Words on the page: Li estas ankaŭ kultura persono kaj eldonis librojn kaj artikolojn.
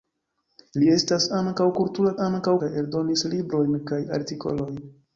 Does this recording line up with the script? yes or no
no